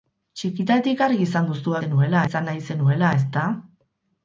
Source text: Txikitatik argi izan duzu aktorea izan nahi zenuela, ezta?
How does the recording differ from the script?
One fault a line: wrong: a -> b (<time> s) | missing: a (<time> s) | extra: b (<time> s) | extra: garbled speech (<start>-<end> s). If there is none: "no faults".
wrong: aktorea -> zenuela (1.8 s)